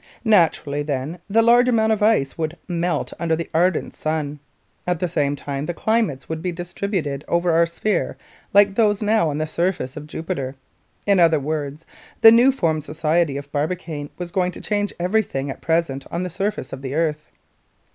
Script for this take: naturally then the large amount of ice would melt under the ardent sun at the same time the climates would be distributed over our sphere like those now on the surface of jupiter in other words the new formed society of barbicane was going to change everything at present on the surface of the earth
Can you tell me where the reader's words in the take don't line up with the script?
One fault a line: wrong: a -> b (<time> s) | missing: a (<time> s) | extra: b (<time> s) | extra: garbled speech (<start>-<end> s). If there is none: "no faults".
no faults